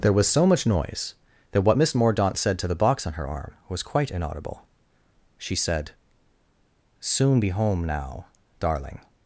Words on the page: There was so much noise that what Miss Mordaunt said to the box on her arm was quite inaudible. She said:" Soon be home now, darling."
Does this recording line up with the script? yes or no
yes